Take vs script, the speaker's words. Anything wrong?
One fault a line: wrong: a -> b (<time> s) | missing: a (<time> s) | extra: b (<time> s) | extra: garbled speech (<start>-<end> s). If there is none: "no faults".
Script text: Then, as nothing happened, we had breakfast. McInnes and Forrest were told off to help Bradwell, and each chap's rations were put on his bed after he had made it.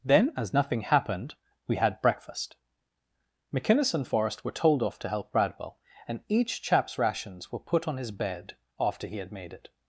no faults